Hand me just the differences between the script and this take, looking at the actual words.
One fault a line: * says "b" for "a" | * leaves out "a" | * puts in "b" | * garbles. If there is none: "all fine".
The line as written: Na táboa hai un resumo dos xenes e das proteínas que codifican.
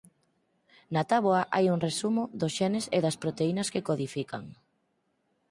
all fine